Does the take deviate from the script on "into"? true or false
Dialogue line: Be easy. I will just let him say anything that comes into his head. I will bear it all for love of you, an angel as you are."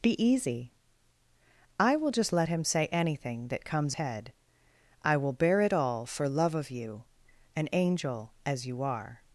true